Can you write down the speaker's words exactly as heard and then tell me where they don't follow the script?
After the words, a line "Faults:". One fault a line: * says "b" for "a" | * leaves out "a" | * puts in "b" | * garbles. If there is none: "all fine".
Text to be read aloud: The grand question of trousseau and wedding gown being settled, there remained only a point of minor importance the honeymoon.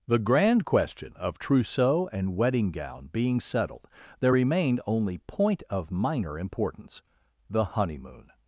The grand question of trousseau and wedding gown being settled, there remained only point of minor importance the honeymoon.
Faults:
* leaves out "a"